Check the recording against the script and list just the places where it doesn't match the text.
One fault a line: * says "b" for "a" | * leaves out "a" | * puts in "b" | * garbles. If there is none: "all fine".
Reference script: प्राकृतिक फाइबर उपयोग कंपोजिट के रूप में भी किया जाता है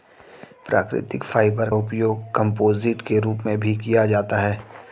all fine